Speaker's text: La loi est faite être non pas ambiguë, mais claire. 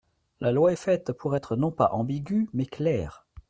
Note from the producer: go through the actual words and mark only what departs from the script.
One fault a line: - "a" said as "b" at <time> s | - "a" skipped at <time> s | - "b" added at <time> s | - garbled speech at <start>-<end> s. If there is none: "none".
- "pour" added at 1.1 s